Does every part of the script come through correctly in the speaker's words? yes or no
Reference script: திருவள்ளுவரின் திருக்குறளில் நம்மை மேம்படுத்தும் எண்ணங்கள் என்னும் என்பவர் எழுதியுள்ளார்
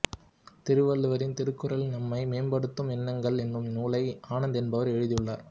no